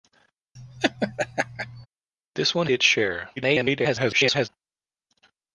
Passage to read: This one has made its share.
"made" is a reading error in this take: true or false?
true